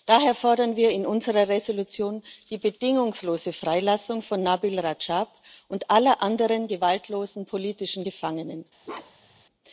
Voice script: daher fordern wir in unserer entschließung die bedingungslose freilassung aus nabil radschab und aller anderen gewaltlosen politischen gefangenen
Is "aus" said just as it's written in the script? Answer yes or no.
no